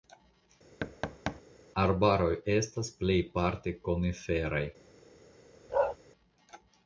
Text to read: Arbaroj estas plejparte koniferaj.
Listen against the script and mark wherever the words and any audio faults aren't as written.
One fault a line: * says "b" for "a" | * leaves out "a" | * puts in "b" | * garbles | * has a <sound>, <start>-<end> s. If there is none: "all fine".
* has a thud, 0.8-1.4 s
* has a bark, 5.7-6.0 s